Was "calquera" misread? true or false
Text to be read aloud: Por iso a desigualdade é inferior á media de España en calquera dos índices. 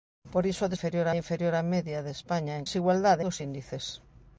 true